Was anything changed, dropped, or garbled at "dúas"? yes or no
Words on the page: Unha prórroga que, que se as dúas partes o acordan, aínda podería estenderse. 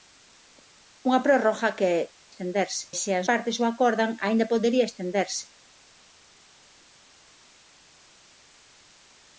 yes